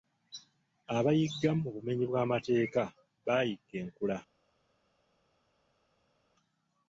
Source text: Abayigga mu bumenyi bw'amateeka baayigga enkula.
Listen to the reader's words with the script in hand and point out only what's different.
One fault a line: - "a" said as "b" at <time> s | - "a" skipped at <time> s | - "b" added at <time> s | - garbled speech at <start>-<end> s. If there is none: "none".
none